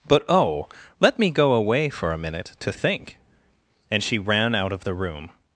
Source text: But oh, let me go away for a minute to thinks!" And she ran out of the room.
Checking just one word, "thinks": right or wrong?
wrong